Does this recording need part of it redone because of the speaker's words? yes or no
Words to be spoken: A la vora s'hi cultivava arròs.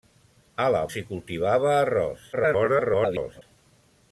yes